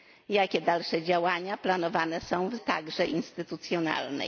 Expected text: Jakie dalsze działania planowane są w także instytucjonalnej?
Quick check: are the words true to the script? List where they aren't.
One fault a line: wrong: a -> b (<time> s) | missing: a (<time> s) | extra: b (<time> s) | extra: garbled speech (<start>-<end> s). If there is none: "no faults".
no faults